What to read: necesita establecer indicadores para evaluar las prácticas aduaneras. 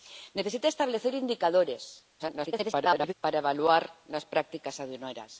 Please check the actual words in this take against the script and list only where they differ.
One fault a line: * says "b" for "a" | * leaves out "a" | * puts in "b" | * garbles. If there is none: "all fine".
* garbles